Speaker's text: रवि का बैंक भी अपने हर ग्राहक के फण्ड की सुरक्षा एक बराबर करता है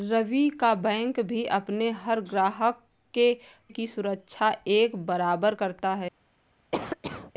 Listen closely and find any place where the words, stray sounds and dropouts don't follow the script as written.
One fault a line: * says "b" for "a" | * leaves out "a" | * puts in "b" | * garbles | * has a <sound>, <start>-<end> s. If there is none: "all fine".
* leaves out "फण्ड"
* has a cough, 6.7-7.3 s